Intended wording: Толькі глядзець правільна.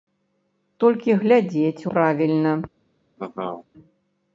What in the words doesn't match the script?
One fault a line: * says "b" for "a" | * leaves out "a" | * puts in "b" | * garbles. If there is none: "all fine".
all fine